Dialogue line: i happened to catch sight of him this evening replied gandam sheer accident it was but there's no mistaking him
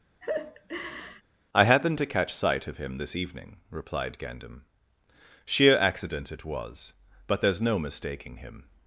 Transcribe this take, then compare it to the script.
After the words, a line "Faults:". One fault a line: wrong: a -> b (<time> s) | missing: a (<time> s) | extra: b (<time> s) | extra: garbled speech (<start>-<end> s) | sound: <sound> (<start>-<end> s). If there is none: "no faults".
i happened to catch sight of him this evening replied gandam sheer accident it was but there's no mistaking him
Faults:
sound: laugh (0.2-1.2 s)